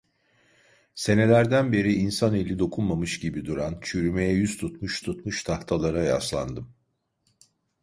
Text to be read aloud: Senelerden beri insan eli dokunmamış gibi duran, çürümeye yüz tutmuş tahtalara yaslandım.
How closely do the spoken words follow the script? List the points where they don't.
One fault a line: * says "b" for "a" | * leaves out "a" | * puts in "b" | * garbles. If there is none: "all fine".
* puts in "tutmuş"